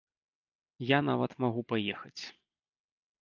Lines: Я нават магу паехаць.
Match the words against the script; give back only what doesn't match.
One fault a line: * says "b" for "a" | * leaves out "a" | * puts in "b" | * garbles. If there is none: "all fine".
all fine